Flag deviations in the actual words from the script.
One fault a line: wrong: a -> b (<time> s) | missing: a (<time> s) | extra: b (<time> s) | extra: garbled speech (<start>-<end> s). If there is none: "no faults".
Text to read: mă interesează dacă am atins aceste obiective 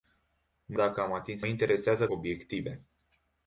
missing: interesează (0.8 s)
wrong: aceste -> interesează (1.5 s)